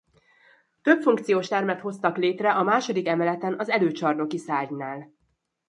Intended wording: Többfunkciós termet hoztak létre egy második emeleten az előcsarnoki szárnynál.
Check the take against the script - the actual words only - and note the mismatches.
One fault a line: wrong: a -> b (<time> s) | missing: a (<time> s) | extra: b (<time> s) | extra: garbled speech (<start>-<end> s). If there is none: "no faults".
wrong: egy -> a (2.5 s)